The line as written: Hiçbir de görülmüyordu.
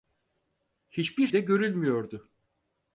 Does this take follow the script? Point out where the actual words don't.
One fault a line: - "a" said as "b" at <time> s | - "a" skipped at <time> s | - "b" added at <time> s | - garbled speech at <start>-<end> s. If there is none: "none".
none